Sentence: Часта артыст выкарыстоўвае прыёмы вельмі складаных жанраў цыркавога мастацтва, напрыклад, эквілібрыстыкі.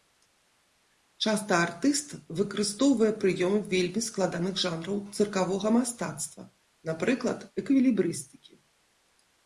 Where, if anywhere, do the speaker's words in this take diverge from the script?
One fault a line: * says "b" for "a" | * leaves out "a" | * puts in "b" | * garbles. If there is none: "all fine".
all fine